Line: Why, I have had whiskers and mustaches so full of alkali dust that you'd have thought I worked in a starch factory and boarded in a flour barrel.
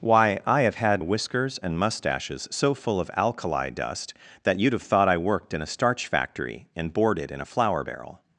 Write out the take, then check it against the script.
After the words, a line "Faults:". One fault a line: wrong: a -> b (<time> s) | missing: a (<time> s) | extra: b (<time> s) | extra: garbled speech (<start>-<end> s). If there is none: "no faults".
Why, I have had whiskers and mustaches so full of alkali dust that you'd have thought I worked in a starch factory and boarded in a flour barrel.
Faults:
no faults